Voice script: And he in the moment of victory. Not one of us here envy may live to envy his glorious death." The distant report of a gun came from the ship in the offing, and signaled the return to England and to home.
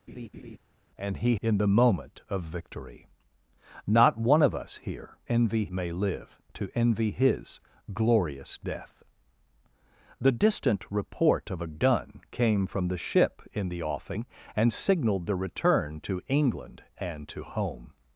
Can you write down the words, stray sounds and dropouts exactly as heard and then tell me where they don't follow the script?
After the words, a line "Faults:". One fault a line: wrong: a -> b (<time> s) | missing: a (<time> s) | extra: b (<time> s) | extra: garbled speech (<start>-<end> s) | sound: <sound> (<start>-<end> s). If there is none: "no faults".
And he in the moment of victory. Not one of us here envy may live to envy his glorious death." The distant report of a gun came from the ship in the offing, and signaled the return to England and to home.
Faults:
sound: laugh (0.1-0.6 s)